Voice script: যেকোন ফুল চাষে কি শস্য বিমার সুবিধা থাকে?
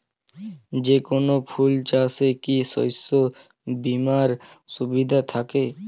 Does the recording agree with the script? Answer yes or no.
yes